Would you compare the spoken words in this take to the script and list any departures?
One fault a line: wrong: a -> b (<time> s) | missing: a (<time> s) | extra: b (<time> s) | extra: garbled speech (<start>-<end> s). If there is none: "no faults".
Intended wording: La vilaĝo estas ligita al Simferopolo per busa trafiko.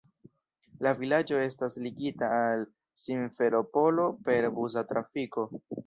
no faults